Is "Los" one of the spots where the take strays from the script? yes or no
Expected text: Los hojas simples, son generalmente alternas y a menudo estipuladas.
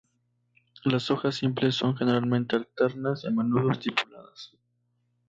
yes